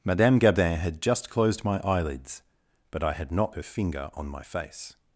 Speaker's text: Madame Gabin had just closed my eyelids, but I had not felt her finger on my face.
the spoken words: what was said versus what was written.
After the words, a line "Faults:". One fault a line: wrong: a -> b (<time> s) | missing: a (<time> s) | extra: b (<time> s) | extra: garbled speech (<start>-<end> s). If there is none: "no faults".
Madame Gabin had just closed my eyelids, but I had not her finger on my face.
Faults:
missing: felt (3.5 s)